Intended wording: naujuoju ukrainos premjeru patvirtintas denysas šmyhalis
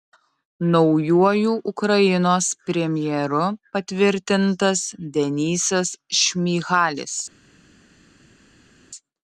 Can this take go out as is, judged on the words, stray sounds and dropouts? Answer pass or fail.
pass